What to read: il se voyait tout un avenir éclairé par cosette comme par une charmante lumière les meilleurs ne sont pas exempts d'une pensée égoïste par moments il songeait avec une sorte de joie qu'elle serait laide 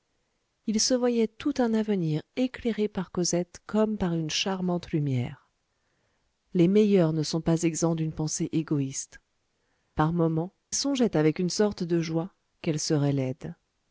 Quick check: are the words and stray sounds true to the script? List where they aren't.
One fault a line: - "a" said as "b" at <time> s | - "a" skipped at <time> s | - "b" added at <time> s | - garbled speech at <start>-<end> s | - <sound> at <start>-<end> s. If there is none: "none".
- "il" skipped at 10.5 s